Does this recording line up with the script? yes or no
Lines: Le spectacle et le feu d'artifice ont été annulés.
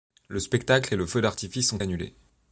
no